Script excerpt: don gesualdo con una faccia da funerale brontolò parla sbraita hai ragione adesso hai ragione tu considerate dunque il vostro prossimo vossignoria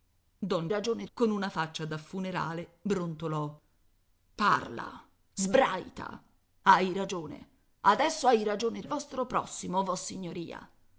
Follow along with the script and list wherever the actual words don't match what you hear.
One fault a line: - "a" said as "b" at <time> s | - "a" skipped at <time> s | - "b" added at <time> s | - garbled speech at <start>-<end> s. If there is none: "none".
- "gesualdo" said as "ragione" at 0.7 s
- "tu considerate dunque" skipped at 8.8 s